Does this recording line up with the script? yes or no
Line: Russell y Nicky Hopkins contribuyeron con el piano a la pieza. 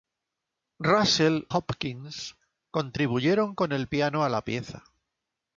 no